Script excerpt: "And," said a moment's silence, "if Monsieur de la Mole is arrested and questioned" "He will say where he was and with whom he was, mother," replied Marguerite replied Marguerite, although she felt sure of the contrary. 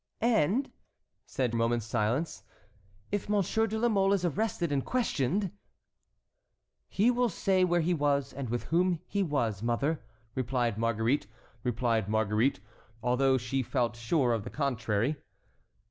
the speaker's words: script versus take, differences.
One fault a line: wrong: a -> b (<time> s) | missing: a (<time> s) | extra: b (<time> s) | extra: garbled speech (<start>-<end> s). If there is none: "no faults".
no faults